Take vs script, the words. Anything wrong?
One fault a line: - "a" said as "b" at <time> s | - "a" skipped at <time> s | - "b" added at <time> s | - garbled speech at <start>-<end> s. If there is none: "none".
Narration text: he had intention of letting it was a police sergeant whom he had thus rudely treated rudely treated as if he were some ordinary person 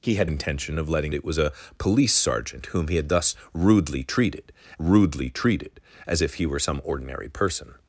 none